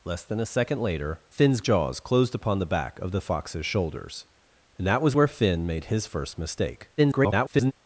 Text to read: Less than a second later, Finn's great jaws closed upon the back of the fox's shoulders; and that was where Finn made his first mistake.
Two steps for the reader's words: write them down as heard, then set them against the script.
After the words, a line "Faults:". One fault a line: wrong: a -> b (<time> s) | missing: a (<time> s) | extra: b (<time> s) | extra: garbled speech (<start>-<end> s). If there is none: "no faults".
Less than a second later, Finn's jaws closed upon the back of the fox's shoulders; and that was where Finn made his first mistake. [garbled]
Faults:
missing: great (1.6 s)
extra: garbled speech (7.0-7.7 s)